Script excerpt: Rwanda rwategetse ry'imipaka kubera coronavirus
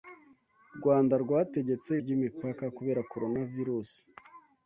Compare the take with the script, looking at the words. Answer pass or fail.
pass